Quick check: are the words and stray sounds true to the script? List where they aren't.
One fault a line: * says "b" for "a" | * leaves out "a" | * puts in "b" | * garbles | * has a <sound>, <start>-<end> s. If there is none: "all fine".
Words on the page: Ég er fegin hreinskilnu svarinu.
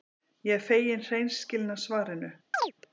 * has a chirp, 2.5-2.7 s